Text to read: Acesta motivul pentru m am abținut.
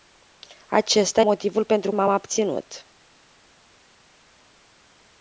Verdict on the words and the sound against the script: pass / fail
pass